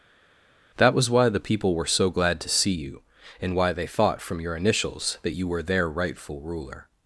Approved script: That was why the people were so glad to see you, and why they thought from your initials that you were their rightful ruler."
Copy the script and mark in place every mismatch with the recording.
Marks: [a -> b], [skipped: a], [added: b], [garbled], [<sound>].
That was why the people were so glad to see you, and why they thought from your initials that you were their rightful ruler."